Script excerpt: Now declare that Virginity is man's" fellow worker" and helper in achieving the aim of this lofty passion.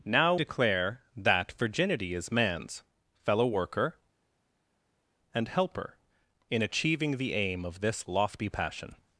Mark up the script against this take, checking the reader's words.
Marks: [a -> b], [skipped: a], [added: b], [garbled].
Now declare that Virginity is man's" fellow worker" and helper in achieving the aim of this lofty passion.